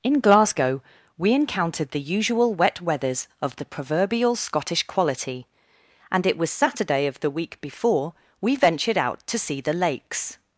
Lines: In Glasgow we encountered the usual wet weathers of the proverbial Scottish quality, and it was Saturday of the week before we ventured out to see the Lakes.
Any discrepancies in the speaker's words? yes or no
no